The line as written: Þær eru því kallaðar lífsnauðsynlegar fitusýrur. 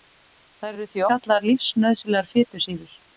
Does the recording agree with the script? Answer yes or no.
yes